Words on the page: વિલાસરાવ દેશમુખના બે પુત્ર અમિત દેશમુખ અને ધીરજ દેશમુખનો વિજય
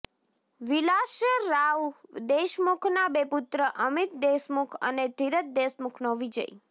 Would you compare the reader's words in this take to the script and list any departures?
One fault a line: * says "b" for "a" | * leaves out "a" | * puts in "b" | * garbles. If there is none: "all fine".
all fine